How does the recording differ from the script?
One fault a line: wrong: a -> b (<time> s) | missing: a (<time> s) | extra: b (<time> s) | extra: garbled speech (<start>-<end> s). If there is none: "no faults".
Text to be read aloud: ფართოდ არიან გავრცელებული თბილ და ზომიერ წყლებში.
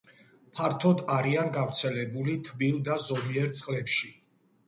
no faults